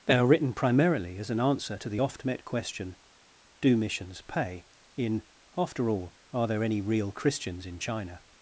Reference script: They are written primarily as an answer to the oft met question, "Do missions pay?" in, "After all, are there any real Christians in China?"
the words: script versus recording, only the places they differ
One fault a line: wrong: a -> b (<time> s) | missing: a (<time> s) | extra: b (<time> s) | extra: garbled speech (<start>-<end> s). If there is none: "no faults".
no faults